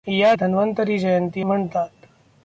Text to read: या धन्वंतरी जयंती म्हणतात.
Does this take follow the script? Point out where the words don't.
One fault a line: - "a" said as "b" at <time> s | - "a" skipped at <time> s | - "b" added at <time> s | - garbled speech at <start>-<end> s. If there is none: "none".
none